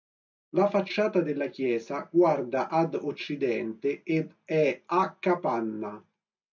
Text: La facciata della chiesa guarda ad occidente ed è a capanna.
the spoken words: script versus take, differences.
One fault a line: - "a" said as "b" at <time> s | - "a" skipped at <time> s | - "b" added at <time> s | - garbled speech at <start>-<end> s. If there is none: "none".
none